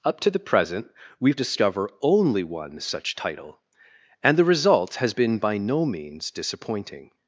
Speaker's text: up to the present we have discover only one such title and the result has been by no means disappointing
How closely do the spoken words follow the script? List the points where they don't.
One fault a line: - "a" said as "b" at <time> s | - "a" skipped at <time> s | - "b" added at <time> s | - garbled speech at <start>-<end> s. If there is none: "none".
none